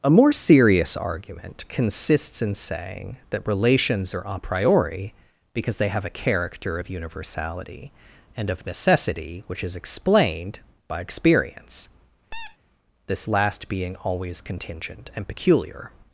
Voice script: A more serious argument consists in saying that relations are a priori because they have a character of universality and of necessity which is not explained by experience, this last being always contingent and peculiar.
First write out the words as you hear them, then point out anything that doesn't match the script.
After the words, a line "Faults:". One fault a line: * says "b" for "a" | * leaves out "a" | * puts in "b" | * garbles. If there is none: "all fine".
A more serious argument consists in saying that relations are a priori because they have a character of universality and of necessity which is explained by experience, this last being always contingent and peculiar.
Faults:
* leaves out "not"